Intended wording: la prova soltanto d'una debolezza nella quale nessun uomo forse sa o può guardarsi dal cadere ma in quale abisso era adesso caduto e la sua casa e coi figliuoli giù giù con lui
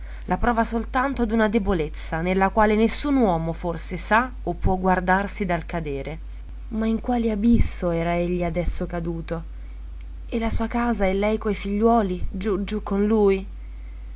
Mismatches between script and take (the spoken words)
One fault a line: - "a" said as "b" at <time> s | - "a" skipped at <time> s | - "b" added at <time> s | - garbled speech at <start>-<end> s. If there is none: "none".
- "egli" added at 8.2 s
- "lei" added at 11.1 s